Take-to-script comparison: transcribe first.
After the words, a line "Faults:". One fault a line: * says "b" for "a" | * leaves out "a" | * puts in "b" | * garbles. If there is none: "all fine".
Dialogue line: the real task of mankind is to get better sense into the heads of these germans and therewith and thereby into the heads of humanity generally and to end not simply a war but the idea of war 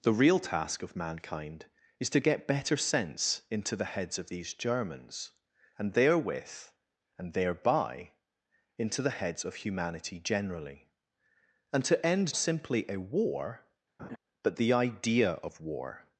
the real task of mankind is to get better sense into the heads of these germans and therewith and thereby into the heads of humanity generally and to end simply a war but the idea of war
Faults:
* leaves out "not"